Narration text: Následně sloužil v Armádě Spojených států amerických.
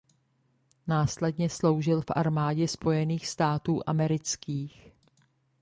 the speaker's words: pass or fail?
pass